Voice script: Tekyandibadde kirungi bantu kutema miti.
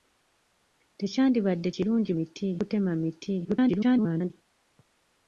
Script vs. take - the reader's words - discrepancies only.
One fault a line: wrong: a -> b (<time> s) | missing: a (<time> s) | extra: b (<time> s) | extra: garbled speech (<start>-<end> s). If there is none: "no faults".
wrong: bantu -> miti (2.2 s)
extra: garbled speech (3.4-4.3 s)